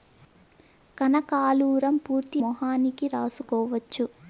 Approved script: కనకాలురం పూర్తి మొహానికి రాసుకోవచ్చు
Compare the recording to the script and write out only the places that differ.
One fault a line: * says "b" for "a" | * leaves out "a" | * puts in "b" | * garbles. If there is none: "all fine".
all fine